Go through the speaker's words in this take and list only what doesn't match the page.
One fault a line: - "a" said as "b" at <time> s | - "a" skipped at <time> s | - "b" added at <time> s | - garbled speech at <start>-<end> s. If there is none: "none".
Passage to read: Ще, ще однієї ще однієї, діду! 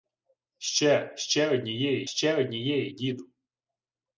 none